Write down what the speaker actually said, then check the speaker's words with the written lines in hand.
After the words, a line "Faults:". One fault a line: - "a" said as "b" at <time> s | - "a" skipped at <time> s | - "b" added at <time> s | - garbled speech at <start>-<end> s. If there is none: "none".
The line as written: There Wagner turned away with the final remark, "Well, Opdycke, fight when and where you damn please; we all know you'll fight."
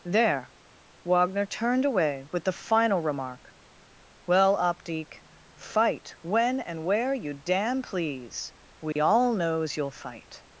There Wagner turned away with the final remark, "Well, Opdycke, fight when and where you damn please; we all knows you'll fight."
Faults:
- "know" said as "knows" at 9.3 s